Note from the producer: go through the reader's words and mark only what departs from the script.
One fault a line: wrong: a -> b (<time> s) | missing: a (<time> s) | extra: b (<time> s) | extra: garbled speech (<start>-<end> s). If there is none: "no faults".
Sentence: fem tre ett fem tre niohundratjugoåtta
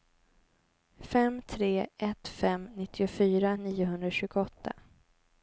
wrong: tre -> nittiofyra (2.7 s)